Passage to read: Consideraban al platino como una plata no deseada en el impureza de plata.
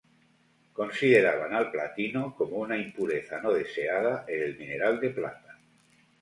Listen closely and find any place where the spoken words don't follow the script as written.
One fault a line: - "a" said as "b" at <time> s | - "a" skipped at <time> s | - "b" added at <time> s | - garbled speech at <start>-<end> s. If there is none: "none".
- "plata" said as "impureza" at 2.8 s
- "impureza" said as "mineral" at 4.5 s